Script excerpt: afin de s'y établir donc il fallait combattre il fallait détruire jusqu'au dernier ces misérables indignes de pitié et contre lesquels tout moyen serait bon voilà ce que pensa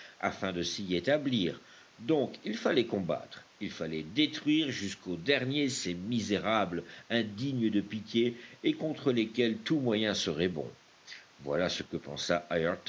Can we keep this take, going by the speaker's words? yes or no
yes